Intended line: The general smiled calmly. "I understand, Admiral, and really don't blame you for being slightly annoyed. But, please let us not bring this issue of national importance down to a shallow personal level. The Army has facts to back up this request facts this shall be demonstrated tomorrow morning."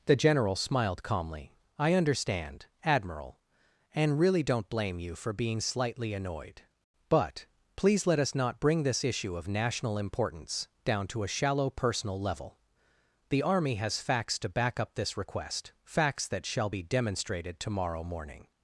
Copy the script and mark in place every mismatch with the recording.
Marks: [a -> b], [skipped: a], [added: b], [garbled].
The general smiled calmly. "I understand, Admiral, and really don't blame you for being slightly annoyed. But, please let us not bring this issue of national importance down to a shallow personal level. The Army has facts to back up this request facts [this -> that] shall be demonstrated tomorrow morning."